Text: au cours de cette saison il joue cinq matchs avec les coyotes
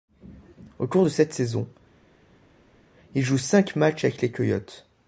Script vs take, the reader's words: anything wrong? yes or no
no